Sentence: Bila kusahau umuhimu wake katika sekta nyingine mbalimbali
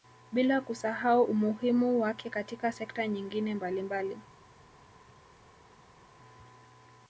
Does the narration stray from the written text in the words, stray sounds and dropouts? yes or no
no